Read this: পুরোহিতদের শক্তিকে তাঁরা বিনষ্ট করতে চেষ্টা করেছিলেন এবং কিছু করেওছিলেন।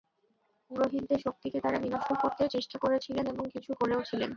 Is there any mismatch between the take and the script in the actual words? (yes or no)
no